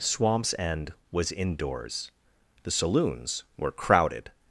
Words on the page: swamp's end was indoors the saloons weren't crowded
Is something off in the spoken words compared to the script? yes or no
yes